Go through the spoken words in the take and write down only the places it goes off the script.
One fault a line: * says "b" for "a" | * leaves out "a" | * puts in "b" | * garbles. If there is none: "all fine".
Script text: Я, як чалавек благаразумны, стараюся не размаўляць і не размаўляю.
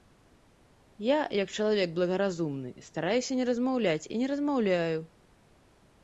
all fine